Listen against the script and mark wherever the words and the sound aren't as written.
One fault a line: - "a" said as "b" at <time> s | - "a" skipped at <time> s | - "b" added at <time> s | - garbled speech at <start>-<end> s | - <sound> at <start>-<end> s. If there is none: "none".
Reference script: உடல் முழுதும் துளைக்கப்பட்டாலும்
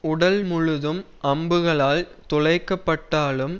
- "அம்புகளால்" added at 1.2 s